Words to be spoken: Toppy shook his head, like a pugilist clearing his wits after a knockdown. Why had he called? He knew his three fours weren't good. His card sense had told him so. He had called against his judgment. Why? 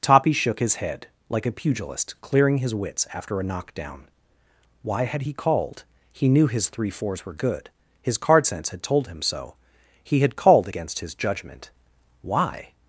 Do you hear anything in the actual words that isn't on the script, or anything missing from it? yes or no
yes